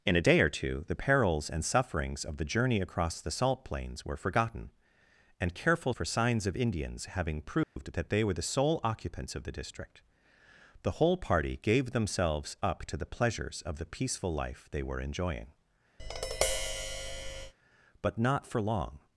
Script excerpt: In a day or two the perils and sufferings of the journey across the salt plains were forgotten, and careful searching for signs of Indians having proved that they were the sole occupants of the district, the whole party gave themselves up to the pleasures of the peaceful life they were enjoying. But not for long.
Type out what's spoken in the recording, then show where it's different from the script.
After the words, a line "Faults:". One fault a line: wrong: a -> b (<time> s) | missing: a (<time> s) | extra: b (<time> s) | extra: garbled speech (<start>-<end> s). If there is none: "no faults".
In a day or two the perils and sufferings of the journey across the salt plains were forgotten, and careful for signs of Indians having proved that they were the sole occupants of the district, the whole party gave themselves up to the pleasures of the peaceful life they were enjoying. But not for long.
Faults:
missing: searching (5.9 s)